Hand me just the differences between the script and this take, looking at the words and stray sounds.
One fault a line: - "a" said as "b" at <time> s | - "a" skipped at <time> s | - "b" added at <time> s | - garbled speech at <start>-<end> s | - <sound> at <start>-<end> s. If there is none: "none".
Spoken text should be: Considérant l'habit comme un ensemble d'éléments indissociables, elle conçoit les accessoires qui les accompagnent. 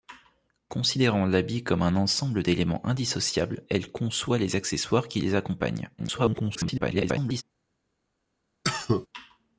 - garbled speech at 6.0-7.4 s
- cough at 8.6-9.1 s